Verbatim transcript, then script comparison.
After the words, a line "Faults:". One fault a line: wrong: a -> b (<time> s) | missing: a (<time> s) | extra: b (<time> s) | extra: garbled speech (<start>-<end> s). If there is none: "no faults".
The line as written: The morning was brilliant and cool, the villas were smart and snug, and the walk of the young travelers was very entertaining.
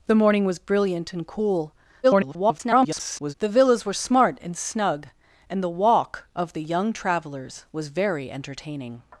The morning was brilliant and cool, [garbled] the villas were smart and snug, and the walk of the young travelers was very entertaining.
Faults:
extra: garbled speech (2.0-3.3 s)